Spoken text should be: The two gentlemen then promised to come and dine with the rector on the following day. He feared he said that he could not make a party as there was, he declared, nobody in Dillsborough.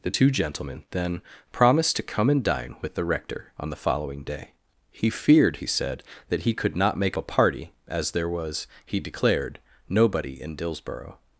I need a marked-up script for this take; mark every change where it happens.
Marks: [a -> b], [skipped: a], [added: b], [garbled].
The two gentlemen then promised to come and dine with the rector on the following day. He feared he said that he could not make a party as there was, he declared, nobody in Dillsborough.